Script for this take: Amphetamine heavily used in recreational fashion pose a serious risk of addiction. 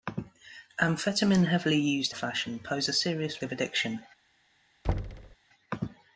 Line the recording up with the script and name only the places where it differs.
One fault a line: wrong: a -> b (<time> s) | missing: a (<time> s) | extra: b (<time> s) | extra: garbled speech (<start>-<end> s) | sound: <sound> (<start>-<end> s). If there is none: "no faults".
missing: in recreational (2.1 s)
missing: risk (3.4 s)
sound: thud (4.8-5.4 s)